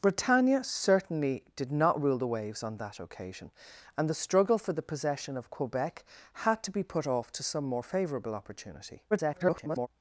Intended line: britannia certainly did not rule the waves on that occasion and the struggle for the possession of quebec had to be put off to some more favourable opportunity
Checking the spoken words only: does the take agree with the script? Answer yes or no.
no